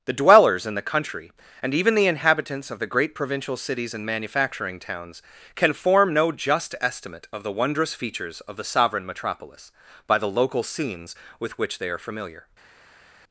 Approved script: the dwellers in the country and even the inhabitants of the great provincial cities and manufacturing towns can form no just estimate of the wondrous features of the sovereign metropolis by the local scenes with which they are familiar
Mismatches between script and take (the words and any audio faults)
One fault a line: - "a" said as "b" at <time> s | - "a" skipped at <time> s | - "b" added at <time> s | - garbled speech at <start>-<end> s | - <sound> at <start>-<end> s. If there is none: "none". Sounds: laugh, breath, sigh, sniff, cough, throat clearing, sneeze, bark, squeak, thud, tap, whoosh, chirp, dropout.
none